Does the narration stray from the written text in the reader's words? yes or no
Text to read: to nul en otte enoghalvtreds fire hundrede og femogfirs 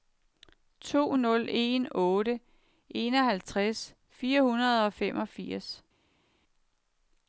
no